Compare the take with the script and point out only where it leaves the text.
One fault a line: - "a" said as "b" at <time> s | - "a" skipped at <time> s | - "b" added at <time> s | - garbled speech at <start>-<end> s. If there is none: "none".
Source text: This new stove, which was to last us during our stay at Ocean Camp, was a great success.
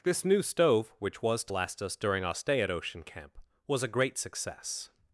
none